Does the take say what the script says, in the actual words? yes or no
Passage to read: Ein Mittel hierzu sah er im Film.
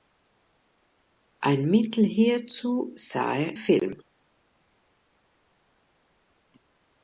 no